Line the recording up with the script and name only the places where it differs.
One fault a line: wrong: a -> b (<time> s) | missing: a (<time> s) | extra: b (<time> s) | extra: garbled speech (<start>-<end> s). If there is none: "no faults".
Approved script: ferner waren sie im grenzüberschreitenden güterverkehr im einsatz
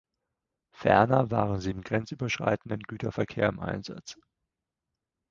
no faults